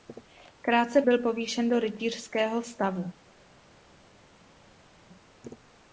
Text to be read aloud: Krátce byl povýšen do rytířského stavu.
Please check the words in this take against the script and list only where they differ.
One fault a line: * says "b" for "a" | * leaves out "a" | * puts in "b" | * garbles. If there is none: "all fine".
all fine